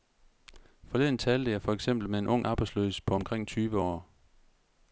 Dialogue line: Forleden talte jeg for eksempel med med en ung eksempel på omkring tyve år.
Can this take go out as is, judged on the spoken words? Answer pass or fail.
fail